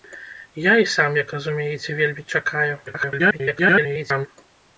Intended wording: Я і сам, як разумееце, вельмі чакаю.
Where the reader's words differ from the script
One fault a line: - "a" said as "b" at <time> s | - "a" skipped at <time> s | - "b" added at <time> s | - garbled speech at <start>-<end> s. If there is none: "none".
- garbled speech at 2.9-4.3 s